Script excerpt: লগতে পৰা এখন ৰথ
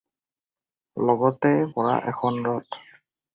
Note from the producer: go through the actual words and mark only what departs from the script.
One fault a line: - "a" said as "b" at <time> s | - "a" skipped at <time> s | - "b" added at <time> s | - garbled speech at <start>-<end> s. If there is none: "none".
none